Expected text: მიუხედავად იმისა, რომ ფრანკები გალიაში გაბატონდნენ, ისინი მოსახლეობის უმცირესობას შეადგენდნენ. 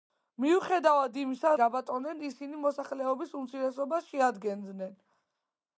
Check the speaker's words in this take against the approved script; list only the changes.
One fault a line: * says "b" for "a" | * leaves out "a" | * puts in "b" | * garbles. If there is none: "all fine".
* leaves out "რომ ფრანკები გალიაში"